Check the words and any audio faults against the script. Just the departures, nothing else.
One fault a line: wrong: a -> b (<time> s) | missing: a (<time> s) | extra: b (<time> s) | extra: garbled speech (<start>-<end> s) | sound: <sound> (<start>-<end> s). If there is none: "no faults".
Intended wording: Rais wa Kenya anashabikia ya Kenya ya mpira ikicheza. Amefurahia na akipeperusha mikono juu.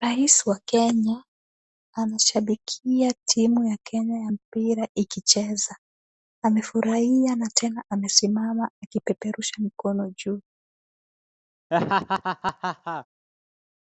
extra: timu (3.2 s)
extra: tena amesimama (7.5 s)
sound: laugh (11.7-13.1 s)